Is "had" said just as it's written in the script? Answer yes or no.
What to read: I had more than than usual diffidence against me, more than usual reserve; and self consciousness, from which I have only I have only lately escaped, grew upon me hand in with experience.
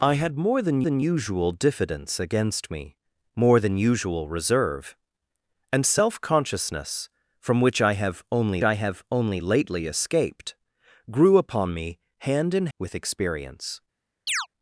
yes